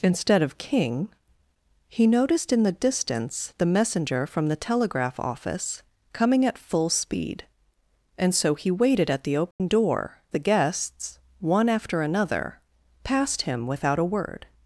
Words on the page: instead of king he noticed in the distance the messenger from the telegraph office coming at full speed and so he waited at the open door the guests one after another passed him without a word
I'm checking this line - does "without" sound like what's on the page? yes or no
yes